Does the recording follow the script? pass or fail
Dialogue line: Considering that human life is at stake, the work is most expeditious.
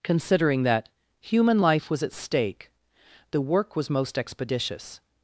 fail